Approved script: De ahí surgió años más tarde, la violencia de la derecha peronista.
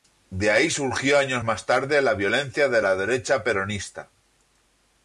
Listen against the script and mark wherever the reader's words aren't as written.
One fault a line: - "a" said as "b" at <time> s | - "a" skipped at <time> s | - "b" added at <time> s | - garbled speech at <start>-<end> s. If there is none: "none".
none